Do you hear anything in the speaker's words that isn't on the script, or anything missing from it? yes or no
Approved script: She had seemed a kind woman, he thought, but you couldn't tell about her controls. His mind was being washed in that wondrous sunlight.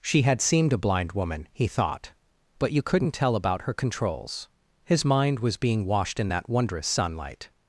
yes